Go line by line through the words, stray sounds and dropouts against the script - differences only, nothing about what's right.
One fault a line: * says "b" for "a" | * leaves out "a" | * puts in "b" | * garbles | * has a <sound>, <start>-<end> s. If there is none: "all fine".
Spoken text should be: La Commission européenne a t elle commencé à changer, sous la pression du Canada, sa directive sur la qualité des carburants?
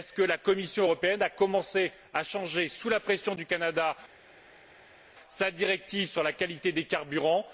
all fine